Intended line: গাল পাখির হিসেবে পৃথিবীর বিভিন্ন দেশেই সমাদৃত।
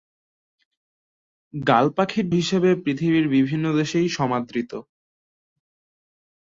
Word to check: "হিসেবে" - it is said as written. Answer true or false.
true